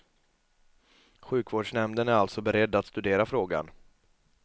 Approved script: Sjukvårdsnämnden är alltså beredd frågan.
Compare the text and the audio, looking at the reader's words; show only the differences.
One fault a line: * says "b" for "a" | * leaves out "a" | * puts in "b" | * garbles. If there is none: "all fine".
* puts in "att studera"